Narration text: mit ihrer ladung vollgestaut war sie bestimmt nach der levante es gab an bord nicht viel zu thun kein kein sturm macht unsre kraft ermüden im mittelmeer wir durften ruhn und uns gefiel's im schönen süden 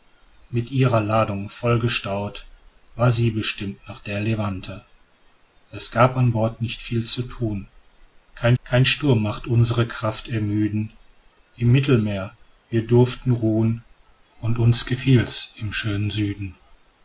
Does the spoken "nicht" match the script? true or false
true